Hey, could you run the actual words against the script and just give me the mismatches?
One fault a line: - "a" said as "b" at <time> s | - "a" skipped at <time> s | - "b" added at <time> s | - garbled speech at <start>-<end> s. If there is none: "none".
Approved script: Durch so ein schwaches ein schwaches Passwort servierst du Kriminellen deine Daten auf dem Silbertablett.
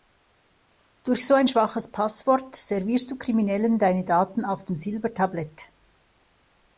- "ein schwaches" skipped at 1.9 s